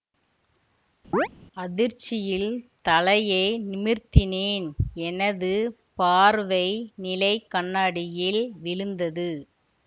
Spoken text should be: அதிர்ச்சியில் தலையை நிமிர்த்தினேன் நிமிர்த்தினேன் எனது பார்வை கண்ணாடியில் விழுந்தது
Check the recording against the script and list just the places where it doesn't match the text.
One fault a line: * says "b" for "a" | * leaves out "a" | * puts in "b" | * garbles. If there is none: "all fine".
* leaves out "நிமிர்த்தினேன்"
* puts in "நிலை"